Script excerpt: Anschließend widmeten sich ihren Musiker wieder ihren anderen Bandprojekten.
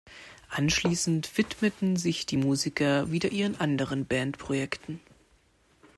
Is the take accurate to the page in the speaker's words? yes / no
no